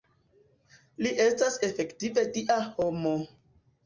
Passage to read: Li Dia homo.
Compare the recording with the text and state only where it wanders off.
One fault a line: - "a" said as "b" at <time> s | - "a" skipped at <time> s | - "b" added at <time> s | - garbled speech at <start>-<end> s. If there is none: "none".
- "estas efektive" added at 1.2 s